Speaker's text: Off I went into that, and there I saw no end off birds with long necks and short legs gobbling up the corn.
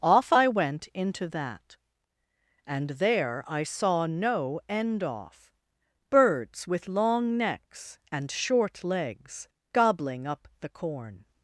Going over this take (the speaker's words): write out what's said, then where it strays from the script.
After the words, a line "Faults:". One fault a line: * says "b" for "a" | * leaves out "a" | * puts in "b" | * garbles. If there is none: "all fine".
Off I went into that, and there I saw no end off birds with long necks and short legs gobbling up the corn.
Faults:
all fine